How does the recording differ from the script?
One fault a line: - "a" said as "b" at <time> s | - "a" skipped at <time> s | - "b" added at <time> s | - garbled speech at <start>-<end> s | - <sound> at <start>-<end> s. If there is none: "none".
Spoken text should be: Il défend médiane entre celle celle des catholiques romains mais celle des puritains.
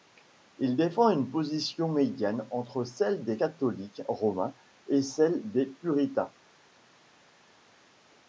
- "une position" added at 1.1 s
- "celle" skipped at 3.2 s
- "mais" said as "et" at 4.9 s